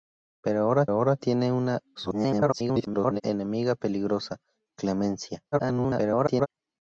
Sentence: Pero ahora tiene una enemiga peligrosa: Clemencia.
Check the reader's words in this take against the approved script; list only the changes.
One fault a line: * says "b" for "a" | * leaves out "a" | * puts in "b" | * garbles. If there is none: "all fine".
* puts in "ahora"
* garbles
* garbles